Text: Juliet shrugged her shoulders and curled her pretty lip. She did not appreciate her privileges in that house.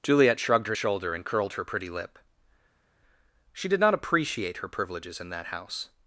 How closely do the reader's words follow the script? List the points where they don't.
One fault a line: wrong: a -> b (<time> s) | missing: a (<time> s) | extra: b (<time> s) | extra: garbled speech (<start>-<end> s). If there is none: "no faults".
wrong: shoulders -> shoulder (0.7 s)